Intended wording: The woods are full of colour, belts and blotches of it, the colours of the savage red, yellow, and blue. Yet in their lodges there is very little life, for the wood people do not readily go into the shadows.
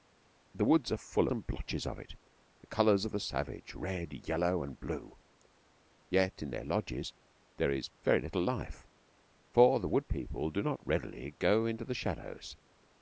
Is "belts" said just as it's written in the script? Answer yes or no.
no